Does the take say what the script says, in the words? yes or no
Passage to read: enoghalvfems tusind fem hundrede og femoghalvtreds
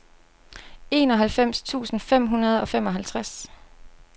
yes